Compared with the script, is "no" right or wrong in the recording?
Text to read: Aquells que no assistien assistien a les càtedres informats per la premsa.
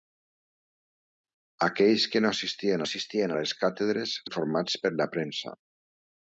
right